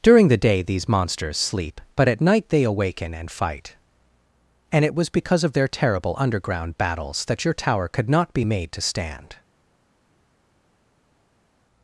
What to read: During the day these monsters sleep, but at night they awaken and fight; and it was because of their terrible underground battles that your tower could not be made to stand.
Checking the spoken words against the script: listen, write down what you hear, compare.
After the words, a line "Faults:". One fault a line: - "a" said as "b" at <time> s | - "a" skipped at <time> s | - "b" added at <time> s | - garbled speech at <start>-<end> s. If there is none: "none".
During the day these monsters sleep, but at night they awaken and fight; and it was because of their terrible underground battles that your tower could not be made to stand.
Faults:
none